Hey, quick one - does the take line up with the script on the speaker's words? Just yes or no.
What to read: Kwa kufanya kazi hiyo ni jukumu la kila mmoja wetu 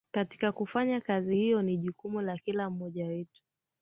no